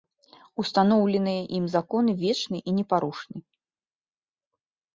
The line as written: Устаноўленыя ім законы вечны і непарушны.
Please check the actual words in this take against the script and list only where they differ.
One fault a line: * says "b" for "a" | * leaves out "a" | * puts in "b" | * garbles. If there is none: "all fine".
all fine